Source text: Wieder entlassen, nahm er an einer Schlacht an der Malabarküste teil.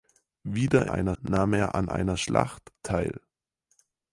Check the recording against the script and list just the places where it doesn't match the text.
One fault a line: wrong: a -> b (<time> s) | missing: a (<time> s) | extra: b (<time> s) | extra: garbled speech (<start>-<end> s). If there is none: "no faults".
wrong: entlassen -> einer (0.9 s)
missing: an der Malabarküste (2.7 s)